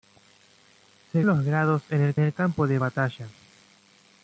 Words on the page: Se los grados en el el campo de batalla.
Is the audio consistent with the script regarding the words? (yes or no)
yes